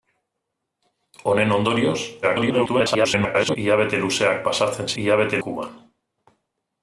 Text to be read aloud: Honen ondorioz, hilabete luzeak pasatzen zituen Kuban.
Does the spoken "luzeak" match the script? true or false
true